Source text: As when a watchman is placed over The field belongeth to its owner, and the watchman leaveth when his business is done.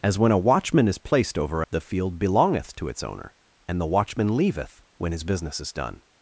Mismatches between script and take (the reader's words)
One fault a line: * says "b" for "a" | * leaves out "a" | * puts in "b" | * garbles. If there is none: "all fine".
all fine